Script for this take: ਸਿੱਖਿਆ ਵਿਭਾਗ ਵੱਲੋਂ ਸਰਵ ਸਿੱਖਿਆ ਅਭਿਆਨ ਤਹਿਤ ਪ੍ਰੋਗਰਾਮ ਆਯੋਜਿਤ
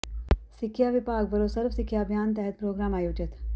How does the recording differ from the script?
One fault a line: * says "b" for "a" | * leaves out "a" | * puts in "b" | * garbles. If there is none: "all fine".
all fine